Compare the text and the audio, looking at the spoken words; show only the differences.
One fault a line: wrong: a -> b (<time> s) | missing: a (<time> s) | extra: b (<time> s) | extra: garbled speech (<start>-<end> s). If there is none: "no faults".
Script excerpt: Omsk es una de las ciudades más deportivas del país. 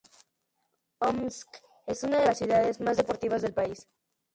no faults